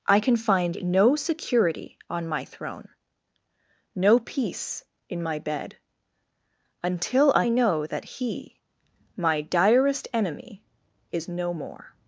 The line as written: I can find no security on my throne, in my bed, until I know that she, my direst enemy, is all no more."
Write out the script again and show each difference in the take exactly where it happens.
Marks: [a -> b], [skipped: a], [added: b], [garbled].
I can find no security on my throne, [added: no peace] in my bed, until I know that [she, -> he] my direst enemy, is [skipped: all] no more."